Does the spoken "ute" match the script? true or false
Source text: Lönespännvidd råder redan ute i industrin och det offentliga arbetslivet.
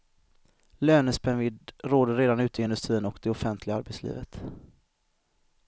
true